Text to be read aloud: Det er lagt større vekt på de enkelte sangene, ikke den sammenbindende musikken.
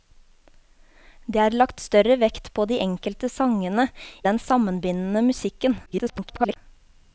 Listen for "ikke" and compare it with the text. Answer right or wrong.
wrong